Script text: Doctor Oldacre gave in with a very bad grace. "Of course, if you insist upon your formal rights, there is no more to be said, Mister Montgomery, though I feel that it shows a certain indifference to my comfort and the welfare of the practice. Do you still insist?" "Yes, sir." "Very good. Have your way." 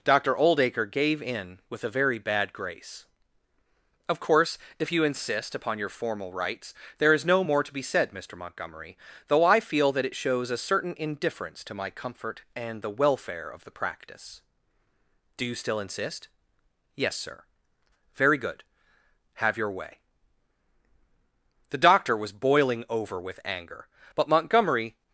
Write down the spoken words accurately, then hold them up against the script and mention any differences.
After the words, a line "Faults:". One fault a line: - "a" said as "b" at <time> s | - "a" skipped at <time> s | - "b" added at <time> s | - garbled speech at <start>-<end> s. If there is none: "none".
Doctor Oldacre gave in with a very bad grace. "Of course, if you insist upon your formal rights, there is no more to be said, Mister Montgomery, though I feel that it shows a certain indifference to my comfort and the welfare of the practice. Do you still insist?" "Yes, sir." "Very good. Have your way." The doctor was boiling over with anger, but Montgomery
Faults:
- "The doctor was boiling over with anger but Montgomery" added at 21.7 s